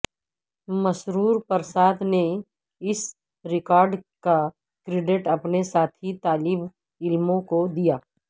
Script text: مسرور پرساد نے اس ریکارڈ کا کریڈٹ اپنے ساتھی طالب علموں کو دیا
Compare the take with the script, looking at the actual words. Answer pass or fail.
pass